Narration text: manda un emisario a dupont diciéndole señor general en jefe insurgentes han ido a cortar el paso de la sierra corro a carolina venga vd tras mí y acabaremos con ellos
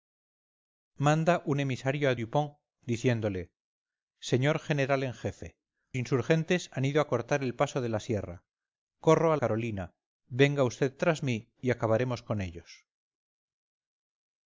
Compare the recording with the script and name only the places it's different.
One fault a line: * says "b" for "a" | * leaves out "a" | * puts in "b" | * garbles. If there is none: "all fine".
all fine